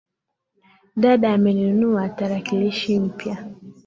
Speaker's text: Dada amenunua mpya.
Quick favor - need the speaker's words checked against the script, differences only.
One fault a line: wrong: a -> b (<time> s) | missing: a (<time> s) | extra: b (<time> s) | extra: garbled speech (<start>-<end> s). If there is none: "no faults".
extra: tarakilishi (2.1 s)